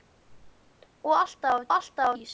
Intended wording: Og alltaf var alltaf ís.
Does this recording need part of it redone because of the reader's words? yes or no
no